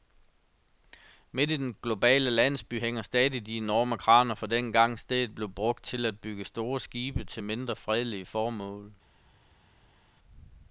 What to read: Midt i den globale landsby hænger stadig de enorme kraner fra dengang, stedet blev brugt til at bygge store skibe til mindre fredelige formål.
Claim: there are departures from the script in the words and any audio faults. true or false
false